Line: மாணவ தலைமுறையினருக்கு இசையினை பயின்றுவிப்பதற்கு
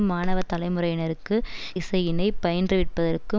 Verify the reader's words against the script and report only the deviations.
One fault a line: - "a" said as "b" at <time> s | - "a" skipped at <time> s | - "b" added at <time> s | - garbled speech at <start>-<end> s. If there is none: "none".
none